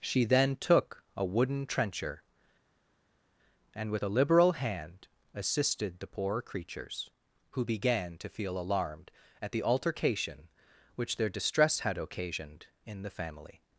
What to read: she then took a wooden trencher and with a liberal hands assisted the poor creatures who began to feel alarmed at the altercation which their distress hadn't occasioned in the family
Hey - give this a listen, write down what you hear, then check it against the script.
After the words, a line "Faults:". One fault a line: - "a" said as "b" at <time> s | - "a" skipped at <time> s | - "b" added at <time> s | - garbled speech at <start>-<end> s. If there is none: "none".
she then took a wooden trencher and with a liberal hand assisted the poor creatures who began to feel alarmed at the altercation which their distress had occasioned in the family
Faults:
- "hands" said as "hand" at 4.5 s
- "hadn't" said as "had" at 11.8 s